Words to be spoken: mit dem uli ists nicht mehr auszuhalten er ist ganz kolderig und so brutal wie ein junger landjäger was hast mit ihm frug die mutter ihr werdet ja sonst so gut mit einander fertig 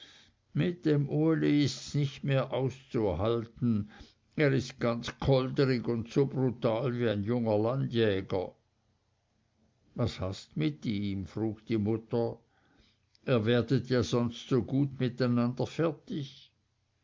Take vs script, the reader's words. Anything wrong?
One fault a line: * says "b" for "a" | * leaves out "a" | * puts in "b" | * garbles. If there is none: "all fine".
all fine